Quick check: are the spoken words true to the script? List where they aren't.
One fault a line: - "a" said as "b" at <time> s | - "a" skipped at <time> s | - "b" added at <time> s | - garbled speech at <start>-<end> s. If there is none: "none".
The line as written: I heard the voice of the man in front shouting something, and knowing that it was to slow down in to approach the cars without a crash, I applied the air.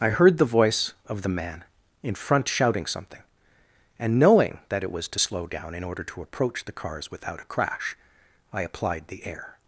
- "order" added at 5.8 s